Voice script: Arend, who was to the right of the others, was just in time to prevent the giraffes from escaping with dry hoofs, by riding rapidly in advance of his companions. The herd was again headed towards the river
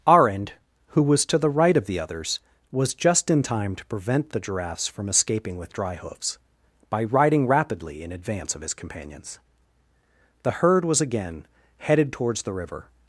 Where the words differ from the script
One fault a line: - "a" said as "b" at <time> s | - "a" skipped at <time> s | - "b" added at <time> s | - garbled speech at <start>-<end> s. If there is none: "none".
none